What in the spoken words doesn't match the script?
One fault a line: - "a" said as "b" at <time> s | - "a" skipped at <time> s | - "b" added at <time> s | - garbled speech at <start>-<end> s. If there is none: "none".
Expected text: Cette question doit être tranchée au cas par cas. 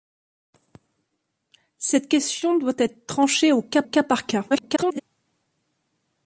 - "cas" added at 3.8 s
- garbled speech at 4.5-5.0 s